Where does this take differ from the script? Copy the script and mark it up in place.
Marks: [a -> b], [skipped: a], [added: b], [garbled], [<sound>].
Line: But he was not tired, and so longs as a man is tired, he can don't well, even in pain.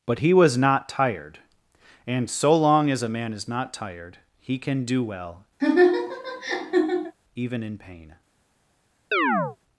But he was not tired, and so [longs -> long] as a man is [added: not] tired, he can [don't -> do] well, [laugh] even in pain. [chirp]